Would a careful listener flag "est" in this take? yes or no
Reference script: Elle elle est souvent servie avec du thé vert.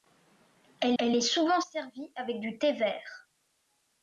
no